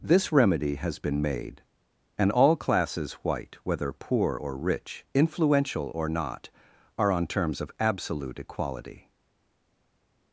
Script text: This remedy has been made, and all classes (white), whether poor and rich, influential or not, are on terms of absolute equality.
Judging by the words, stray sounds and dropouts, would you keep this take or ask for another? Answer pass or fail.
fail